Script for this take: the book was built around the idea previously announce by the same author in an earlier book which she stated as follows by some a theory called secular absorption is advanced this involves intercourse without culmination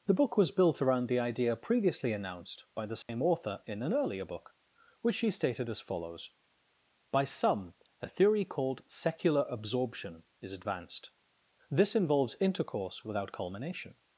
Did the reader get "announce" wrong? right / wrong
wrong